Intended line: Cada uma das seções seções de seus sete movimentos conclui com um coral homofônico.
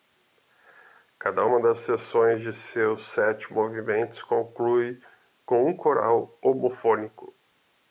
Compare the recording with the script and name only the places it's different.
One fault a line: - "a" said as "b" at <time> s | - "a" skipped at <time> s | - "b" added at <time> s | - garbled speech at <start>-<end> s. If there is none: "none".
- "seções" skipped at 2.4 s